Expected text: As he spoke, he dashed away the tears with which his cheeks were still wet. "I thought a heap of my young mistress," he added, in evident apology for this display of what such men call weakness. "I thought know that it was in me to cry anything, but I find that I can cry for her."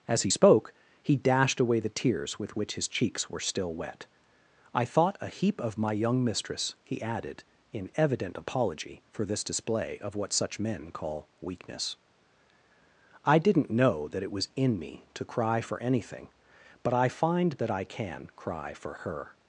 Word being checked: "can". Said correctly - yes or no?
yes